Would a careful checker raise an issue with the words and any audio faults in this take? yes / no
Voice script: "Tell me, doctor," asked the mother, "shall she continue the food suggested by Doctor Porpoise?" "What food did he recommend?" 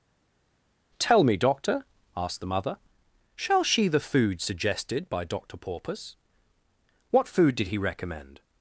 yes